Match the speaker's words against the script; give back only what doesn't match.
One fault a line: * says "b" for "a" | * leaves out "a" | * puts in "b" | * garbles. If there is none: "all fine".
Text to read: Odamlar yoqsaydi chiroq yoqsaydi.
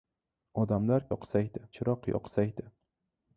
all fine